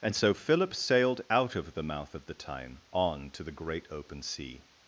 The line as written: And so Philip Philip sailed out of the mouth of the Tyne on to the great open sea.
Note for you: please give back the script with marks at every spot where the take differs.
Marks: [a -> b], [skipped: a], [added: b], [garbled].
And so Philip [skipped: Philip] sailed out of the mouth of the Tyne on to the great open sea.